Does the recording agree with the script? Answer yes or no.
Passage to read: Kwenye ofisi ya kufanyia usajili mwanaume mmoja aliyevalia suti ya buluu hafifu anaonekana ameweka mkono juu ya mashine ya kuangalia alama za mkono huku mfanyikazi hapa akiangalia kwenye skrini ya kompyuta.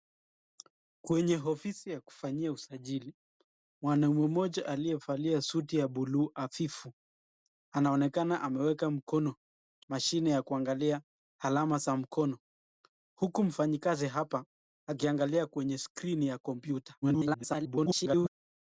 no